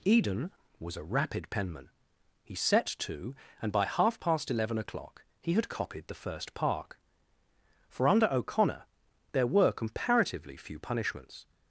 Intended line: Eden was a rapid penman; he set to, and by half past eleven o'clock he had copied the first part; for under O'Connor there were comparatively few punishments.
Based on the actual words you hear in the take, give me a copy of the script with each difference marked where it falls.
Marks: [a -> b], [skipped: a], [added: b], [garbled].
Eden was a rapid penman; he set to, and by half past eleven o'clock he had copied the first [part; -> park] for under O'Connor there were comparatively few punishments.